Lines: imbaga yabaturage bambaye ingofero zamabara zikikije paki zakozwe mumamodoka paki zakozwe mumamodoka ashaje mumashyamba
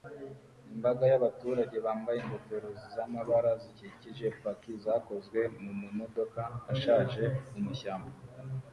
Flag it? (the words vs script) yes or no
yes